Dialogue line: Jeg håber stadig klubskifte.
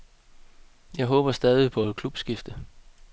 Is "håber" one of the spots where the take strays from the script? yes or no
no